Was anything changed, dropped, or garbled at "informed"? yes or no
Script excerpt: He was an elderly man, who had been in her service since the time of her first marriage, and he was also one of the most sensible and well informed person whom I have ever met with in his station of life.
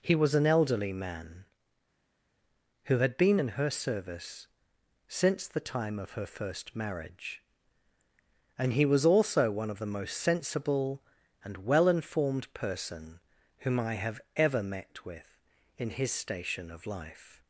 no